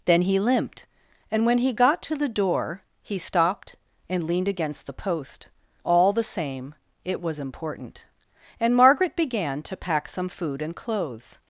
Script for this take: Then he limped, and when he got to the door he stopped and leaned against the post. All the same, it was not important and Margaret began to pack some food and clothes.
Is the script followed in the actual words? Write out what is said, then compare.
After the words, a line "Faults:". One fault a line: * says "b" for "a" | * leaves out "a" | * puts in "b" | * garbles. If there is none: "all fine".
Then he limped, and when he got to the door he stopped and leaned against the post. All the same, it was important and Margaret began to pack some food and clothes.
Faults:
* leaves out "not"